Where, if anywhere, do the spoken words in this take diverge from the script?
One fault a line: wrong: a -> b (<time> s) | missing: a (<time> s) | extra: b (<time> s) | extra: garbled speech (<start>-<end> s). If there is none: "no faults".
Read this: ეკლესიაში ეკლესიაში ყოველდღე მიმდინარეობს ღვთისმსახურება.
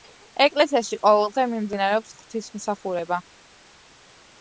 missing: ეკლესიაში (1.0 s)